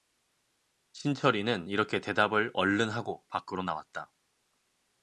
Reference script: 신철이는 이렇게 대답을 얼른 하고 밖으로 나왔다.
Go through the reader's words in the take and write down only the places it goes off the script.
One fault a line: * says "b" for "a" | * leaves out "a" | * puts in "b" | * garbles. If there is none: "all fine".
all fine